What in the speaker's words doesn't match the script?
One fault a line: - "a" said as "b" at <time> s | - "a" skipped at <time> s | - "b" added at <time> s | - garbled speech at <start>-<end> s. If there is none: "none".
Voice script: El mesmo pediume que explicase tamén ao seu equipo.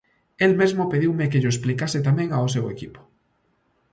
- "llo" added at 1.4 s